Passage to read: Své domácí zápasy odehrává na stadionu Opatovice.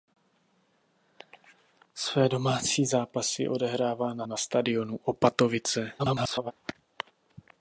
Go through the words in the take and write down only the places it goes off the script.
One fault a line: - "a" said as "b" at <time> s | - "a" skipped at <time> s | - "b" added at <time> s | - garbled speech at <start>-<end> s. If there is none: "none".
- "na" added at 4.2 s
- garbled speech at 6.0-6.5 s